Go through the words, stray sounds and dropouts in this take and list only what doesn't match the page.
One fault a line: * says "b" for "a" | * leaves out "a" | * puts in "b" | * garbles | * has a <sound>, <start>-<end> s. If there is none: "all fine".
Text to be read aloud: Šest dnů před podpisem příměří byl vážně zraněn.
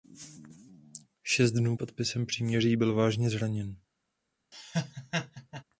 * leaves out "před"
* has a laugh, 4.5-5.6 s